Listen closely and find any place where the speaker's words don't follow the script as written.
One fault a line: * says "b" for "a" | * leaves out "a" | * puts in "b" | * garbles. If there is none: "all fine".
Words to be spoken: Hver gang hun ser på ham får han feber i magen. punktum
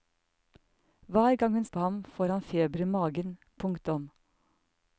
* leaves out "ser"